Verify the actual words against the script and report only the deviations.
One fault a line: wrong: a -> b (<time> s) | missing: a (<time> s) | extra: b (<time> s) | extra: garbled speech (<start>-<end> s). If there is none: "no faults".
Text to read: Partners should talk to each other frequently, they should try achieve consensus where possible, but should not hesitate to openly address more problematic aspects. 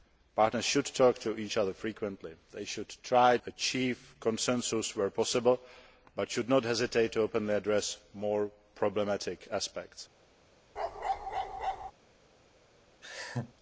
no faults